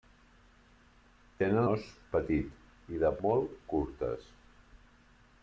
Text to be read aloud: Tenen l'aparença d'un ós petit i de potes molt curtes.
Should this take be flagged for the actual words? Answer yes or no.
yes